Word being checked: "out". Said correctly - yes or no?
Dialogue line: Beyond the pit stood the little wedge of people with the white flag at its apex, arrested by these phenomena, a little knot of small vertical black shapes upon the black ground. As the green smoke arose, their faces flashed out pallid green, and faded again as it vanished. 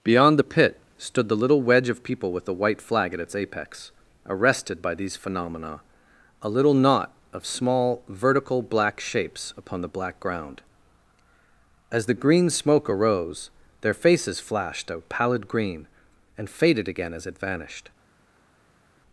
no